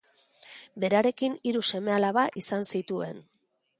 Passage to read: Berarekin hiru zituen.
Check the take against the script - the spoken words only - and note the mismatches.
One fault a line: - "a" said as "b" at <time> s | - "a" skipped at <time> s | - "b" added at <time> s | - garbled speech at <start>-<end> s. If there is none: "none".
- "seme alaba izan" added at 1.7 s